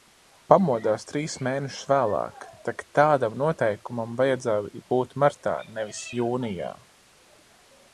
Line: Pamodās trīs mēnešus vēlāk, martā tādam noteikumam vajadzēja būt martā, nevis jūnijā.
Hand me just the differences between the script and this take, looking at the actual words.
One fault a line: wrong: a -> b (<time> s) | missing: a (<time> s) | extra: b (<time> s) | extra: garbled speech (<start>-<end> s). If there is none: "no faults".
wrong: martā -> tak (2.7 s)